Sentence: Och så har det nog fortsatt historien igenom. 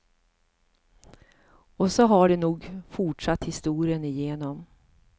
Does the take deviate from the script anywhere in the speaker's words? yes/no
no